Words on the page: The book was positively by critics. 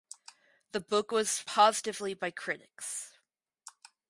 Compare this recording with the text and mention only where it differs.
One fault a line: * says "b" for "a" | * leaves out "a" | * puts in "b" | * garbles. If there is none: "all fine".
all fine